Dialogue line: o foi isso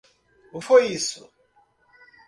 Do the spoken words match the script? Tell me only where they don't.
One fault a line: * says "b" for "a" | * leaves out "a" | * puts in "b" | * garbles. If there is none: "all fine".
all fine